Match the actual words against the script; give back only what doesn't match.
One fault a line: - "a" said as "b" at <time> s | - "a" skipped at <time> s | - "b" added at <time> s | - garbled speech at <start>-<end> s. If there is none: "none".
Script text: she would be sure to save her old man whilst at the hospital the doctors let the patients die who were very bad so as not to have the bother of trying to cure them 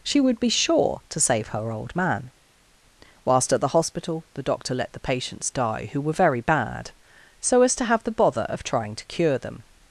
- "doctors" said as "doctor" at 4.4 s
- "not" skipped at 7.8 s